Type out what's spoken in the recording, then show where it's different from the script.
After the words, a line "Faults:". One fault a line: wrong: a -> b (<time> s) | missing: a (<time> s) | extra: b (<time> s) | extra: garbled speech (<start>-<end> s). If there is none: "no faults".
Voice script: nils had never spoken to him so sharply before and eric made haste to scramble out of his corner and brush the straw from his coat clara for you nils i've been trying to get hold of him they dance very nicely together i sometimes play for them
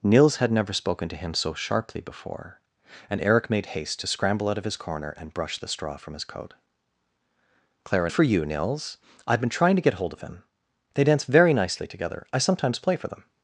nils had never spoken to him so sharply before and eric made haste to scramble out of his corner and brush the straw from his coat clara for you nils i've been trying to get hold of him they dance very nicely together i sometimes play for them
Faults:
no faults